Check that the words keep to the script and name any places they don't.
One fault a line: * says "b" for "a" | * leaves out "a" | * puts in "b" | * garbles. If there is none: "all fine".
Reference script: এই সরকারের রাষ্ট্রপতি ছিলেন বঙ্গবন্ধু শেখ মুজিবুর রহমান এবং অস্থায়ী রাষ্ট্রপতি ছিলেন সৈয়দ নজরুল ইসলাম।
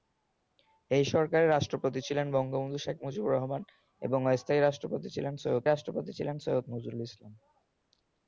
* puts in "রাষ্ট্রপতি ছিলেন সৈয়দ"